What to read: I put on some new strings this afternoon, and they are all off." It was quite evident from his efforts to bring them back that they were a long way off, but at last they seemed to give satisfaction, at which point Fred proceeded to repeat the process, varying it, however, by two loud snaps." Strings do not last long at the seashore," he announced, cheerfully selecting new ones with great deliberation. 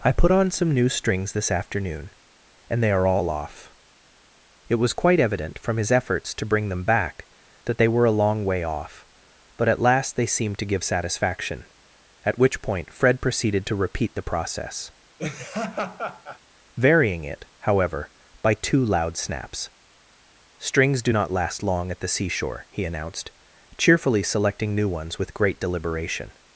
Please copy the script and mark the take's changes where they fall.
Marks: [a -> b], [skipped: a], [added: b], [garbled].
I put on some new strings this afternoon, and they are all off." It was quite evident from his efforts to bring them back that they were a long way off, but at last they seemed to give satisfaction, at which point Fred proceeded to repeat the process, varying it, however, by two loud snaps." Strings do not last long at the seashore," he announced, cheerfully selecting new ones with great deliberation.